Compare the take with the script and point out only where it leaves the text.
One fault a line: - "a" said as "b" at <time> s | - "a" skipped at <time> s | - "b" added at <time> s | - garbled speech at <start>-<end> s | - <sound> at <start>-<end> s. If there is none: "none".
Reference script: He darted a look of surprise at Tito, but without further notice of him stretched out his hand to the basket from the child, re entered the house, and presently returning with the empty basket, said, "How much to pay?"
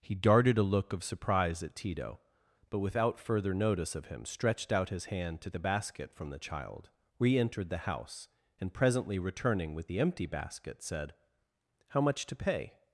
none